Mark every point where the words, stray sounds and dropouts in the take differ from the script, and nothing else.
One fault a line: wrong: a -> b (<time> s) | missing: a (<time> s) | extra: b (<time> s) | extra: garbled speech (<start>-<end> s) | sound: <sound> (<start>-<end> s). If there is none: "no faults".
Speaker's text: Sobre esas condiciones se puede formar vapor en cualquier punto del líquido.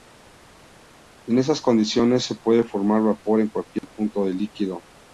wrong: Sobre -> En (1.3 s)
sound: dropout (3.8-3.8 s)